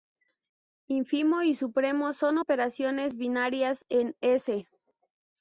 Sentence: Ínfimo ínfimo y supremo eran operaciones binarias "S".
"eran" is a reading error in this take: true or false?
true